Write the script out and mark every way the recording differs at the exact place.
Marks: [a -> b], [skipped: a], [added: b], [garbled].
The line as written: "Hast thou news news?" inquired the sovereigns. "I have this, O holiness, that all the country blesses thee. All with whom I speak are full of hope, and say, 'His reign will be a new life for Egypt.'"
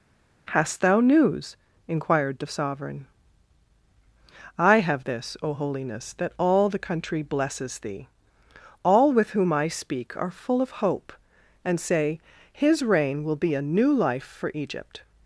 "Hast thou news [skipped: news?"] inquired the [sovereigns. -> sovereign] "I have this, O holiness, that all the country blesses thee. All with whom I speak are full of hope, and say, 'His reign will be a new life for Egypt.'"